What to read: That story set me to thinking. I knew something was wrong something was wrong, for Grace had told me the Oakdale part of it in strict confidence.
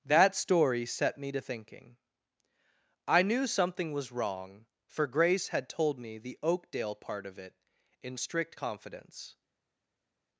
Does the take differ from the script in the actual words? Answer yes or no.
yes